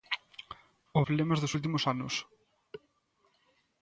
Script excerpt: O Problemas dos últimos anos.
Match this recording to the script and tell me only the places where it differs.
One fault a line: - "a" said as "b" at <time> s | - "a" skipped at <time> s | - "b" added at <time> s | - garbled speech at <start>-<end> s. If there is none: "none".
none